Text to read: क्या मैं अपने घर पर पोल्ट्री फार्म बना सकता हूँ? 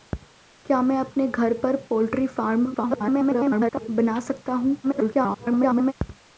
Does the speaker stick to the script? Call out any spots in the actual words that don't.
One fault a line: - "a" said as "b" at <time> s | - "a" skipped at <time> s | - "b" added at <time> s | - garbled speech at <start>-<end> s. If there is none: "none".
- garbled speech at 2.7-3.9 s
- garbled speech at 4.8-5.9 s